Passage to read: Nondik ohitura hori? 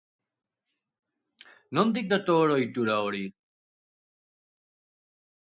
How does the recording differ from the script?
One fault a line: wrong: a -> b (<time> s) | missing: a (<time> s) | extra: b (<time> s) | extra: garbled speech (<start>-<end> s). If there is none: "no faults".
extra: dator (2.1 s)